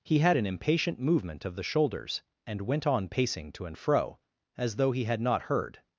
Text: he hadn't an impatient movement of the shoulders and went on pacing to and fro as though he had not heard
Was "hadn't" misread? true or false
true